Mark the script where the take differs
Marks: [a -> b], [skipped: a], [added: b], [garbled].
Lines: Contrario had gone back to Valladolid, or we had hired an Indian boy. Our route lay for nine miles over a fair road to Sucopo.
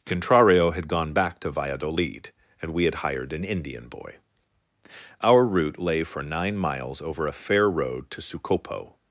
Contrario had gone back to Valladolid, [or -> and] we had hired an Indian boy. Our route lay for nine miles over a fair road to Sucopo.